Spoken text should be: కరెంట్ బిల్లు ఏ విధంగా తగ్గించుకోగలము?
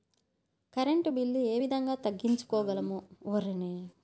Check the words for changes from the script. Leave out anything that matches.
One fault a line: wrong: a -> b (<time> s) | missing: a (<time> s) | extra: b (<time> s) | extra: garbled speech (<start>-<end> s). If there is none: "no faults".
no faults